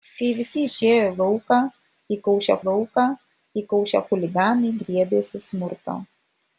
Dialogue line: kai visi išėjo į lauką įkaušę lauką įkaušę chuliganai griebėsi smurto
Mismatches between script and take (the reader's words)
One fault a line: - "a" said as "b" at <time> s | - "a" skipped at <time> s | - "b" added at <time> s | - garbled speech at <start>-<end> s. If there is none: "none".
none